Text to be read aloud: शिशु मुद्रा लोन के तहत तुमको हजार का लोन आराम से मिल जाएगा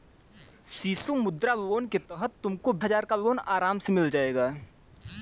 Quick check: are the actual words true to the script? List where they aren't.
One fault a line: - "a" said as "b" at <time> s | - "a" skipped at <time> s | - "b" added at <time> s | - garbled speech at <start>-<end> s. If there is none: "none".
none